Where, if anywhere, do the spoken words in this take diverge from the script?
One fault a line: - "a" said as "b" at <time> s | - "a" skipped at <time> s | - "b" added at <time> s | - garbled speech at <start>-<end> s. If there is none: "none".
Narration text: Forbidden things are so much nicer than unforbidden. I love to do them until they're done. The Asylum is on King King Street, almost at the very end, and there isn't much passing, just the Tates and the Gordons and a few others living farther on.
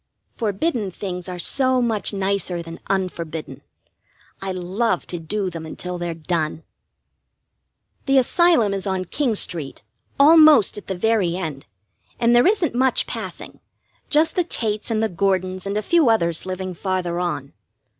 - "King" skipped at 9.3 s